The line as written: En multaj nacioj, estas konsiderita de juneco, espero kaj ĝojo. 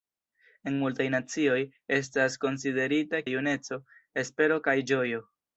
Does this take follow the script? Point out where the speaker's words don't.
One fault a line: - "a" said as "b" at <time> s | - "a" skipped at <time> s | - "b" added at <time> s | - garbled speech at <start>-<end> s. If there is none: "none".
none